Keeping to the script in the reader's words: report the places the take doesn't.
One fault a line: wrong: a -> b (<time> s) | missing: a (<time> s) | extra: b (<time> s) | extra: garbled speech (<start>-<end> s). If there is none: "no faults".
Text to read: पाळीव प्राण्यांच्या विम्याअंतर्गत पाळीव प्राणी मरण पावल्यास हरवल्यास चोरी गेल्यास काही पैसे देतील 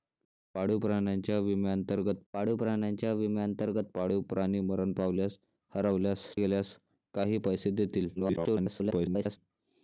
extra: प्राण्यांच्या विम्याअंतर्गत पाळीव (2.6 s)
missing: चोरी (6.2 s)
extra: garbled speech (8.2-9.4 s)